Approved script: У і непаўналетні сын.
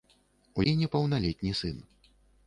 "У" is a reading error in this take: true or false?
false